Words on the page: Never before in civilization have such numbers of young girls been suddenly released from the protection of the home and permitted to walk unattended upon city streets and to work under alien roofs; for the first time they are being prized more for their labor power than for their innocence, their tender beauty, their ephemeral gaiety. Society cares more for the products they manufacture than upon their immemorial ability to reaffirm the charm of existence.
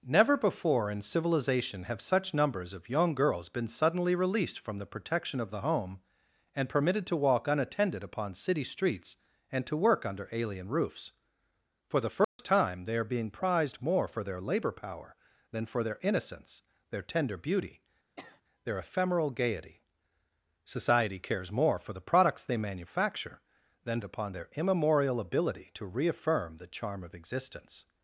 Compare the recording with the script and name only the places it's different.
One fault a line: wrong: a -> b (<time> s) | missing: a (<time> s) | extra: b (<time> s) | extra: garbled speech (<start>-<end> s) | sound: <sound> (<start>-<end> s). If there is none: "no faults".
sound: dropout (12.2-12.4 s)
sound: sniff (18.2-18.4 s)